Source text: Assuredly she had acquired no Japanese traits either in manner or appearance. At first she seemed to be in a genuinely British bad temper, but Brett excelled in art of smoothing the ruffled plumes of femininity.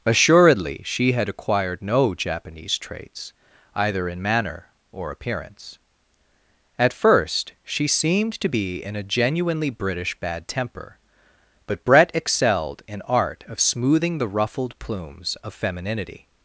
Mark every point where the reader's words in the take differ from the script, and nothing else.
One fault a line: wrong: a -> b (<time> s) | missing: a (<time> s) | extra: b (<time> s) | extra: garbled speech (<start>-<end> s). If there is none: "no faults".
no faults